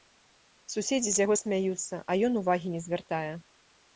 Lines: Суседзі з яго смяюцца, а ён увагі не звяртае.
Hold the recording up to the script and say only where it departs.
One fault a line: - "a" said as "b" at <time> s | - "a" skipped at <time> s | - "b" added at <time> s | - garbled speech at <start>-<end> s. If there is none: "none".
none